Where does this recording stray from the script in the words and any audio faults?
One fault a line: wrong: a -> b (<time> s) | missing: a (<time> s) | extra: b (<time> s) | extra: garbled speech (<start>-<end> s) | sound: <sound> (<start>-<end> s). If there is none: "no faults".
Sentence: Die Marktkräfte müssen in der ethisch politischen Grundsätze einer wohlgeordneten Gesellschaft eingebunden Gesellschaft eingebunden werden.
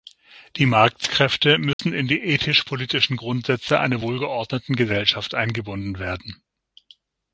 sound: dropout (1.7-1.8 s)
wrong: der -> die (2.1 s)
missing: Gesellschaft eingebunden (6.0 s)